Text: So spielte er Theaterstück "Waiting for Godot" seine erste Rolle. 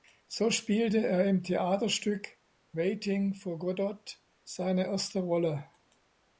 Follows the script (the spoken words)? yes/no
no